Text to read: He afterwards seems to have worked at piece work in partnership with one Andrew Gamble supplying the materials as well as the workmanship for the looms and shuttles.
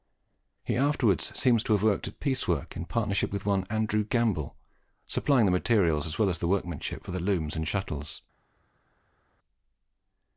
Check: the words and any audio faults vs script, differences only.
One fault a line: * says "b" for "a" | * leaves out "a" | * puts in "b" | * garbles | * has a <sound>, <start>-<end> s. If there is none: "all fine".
all fine